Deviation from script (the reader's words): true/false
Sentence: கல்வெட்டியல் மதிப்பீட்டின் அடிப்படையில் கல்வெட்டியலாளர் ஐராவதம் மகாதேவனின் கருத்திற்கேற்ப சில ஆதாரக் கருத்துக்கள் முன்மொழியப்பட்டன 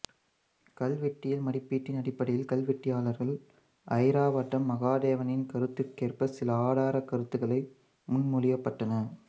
false